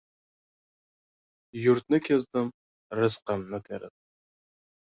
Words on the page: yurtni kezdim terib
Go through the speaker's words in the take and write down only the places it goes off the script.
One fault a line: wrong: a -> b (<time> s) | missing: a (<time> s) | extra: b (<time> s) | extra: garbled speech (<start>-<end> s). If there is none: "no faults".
extra: rizqimni (3.0 s)